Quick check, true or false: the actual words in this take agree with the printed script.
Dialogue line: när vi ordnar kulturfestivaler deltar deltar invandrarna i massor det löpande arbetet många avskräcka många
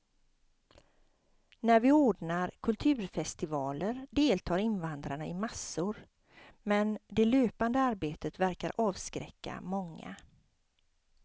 false